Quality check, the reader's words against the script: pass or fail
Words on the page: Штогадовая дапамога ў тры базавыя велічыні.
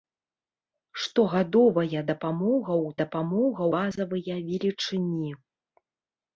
fail